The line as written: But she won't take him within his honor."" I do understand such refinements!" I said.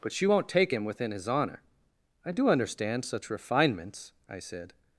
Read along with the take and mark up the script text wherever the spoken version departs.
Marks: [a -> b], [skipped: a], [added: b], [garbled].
But she won't take him within his honor."" I do understand such refinements!" I said.